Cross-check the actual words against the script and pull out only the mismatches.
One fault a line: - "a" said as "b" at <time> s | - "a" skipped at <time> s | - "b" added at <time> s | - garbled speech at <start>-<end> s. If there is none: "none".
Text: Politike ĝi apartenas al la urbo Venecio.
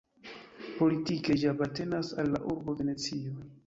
none